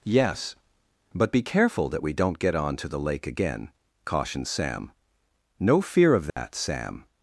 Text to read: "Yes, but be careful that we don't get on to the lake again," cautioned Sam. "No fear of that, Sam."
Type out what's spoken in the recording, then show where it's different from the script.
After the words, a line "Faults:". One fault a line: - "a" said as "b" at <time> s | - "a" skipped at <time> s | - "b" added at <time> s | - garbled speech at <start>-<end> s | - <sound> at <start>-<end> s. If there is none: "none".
"Yes, but be careful that we don't get on to the lake again," cautioned Sam. "No fear of that, Sam."
Faults:
- dropout at 6.3-6.4 s